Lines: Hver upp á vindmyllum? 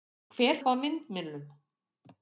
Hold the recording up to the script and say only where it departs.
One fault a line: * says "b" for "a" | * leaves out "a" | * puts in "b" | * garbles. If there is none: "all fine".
all fine